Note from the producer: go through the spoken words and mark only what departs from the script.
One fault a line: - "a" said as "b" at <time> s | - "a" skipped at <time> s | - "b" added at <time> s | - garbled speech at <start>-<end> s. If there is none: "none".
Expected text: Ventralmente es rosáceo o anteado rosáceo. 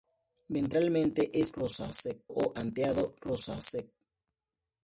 none